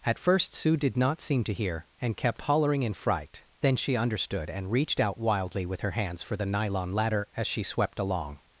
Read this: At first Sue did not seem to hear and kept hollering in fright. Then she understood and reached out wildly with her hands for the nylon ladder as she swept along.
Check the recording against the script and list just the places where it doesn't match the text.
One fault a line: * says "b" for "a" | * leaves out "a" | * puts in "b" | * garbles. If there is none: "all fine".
all fine